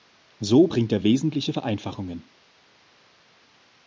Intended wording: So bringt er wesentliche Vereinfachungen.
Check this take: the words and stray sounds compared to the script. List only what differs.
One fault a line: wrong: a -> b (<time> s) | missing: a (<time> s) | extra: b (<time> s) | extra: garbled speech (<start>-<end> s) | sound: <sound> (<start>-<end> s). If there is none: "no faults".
no faults